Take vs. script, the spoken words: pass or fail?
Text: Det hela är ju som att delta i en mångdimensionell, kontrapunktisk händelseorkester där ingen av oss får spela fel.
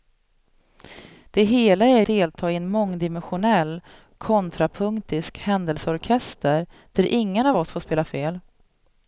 fail